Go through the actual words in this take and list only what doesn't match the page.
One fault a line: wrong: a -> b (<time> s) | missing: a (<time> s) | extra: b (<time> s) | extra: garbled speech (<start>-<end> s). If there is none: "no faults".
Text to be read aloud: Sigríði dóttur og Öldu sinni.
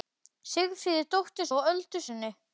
no faults